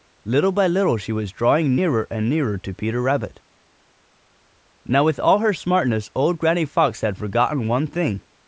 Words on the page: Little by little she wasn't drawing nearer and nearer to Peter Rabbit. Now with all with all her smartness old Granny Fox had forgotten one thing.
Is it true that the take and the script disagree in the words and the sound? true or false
true